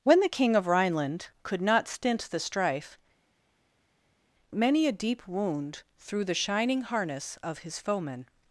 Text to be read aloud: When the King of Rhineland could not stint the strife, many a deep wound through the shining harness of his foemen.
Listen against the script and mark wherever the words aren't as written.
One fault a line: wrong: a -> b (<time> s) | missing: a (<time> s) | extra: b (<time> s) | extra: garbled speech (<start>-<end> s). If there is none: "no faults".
no faults